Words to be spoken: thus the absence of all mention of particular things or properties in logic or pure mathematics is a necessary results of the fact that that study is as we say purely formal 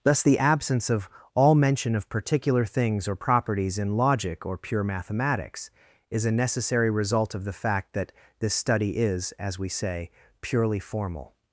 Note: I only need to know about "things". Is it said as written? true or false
true